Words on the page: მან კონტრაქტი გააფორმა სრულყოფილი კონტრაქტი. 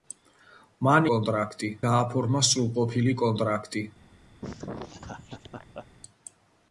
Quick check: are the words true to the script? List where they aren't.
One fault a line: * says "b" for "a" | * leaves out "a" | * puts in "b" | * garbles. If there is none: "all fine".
all fine